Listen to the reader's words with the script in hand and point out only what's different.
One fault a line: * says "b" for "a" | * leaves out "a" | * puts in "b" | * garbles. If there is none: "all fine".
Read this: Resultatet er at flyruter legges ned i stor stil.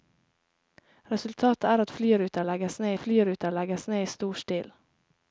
* puts in "flyruter legges ned"